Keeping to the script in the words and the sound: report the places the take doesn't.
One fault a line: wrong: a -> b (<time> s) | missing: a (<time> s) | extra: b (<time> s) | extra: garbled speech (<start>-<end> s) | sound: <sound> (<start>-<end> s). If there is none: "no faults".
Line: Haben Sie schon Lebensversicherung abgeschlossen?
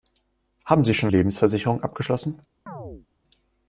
sound: chirp (2.7-3.1 s)